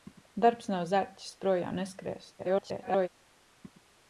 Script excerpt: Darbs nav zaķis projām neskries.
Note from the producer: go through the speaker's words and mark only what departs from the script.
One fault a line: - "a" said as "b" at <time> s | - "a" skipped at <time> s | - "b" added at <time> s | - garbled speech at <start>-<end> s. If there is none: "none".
- garbled speech at 2.4-3.1 s